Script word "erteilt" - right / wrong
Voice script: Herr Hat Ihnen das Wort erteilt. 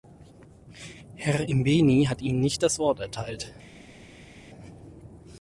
right